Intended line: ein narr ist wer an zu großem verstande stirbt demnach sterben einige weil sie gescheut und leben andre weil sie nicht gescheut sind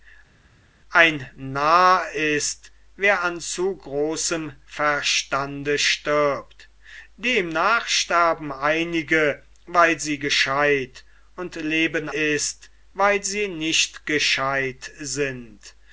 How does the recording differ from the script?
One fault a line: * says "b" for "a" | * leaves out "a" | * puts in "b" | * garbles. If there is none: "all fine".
* says "ist" for "andre"